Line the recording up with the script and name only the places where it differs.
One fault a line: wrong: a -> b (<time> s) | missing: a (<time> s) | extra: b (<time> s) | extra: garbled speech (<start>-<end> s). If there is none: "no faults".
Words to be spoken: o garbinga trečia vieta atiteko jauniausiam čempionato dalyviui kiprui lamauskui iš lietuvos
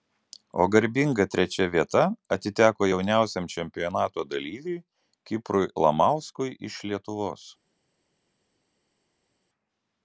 no faults